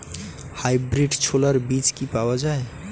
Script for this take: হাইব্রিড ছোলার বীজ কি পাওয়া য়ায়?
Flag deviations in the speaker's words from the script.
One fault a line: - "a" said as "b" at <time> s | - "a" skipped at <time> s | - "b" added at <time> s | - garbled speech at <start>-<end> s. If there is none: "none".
none